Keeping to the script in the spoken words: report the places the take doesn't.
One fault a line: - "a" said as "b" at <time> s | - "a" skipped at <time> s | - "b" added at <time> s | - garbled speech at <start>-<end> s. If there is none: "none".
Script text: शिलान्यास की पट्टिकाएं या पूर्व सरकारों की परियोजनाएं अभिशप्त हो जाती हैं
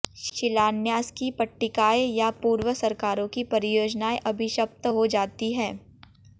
none